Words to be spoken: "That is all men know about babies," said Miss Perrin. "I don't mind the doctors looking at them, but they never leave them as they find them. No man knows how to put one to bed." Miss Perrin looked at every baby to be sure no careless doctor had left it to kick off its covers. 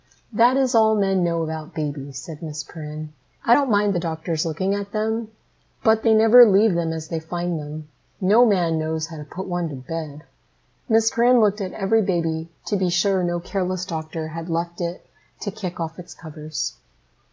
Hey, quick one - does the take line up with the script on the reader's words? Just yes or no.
yes